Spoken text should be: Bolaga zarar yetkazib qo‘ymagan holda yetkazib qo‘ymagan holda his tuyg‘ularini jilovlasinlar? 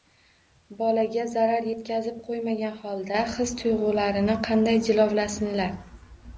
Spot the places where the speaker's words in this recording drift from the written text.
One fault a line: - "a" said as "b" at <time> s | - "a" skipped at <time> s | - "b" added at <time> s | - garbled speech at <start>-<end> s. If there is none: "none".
- "yetkazib qo‘ymagan holda" skipped at 3.3 s
- "qanday" added at 4.5 s